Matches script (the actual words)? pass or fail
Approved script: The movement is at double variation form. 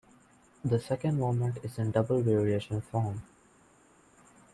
fail